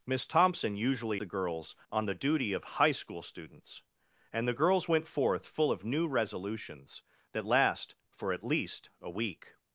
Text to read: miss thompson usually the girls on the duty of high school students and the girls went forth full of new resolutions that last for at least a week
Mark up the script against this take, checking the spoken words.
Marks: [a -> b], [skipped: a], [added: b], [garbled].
miss thompson usually the girls on the duty of high school students and the girls went forth full of new resolutions that last for at least a week